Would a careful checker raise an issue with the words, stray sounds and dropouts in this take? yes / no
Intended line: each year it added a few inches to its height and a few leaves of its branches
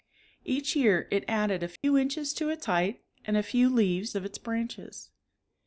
yes